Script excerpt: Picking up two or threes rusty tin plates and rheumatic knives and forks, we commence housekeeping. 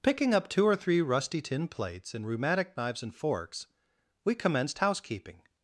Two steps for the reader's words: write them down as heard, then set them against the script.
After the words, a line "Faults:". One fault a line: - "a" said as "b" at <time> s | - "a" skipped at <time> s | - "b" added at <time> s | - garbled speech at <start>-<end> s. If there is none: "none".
Picking up two or three rusty tin plates and rheumatic knives and forks, we commenced housekeeping.
Faults:
- "threes" said as "three" at 0.8 s
- "commence" said as "commenced" at 4.3 s